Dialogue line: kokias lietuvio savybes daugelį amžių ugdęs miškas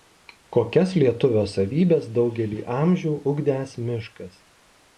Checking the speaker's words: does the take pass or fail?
pass